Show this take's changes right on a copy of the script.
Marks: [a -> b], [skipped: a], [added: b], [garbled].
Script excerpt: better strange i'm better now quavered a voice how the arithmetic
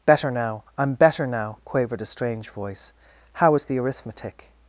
better [strange -> now] i'm better now quavered a [added: strange] voice how [added: is] the arithmetic